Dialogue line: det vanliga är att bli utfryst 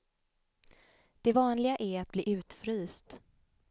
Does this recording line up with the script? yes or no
yes